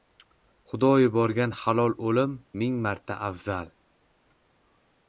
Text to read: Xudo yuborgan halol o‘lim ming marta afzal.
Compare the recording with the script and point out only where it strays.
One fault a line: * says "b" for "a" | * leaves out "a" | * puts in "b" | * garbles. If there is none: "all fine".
all fine